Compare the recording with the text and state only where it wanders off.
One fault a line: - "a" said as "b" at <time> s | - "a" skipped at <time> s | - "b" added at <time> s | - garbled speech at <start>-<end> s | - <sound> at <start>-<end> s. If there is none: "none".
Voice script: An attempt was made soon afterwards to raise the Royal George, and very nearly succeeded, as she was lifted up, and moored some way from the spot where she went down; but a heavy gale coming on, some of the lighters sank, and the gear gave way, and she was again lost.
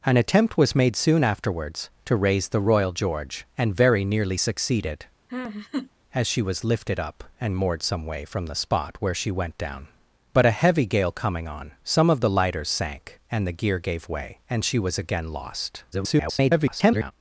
- laugh at 5.3-5.9 s
- garbled speech at 15.9-17.1 s